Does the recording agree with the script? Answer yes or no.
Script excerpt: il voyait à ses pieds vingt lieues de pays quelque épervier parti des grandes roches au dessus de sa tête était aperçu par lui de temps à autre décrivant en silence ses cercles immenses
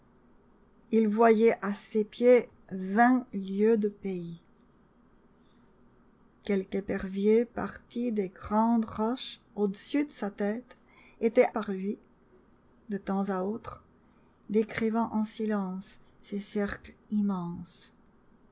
no